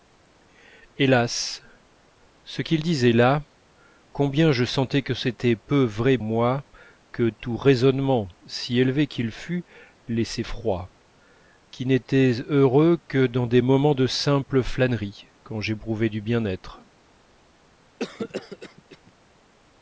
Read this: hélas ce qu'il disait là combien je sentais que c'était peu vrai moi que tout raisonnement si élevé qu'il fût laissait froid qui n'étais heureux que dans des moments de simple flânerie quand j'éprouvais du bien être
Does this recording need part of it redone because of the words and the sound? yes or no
yes